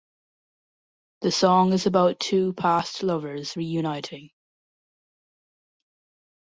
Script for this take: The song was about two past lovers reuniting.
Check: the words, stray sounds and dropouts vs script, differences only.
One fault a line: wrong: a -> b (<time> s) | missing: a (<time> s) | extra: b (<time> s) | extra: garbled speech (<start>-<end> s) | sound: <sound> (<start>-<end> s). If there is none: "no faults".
wrong: was -> is (1.7 s)